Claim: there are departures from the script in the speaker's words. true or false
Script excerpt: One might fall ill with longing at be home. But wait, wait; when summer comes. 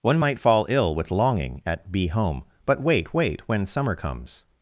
false